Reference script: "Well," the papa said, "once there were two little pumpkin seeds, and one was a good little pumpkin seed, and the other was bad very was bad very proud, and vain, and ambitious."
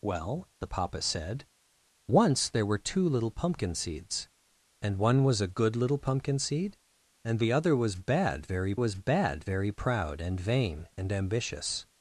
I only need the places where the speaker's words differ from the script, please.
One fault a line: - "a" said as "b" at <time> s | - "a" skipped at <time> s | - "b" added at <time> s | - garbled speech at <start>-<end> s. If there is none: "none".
none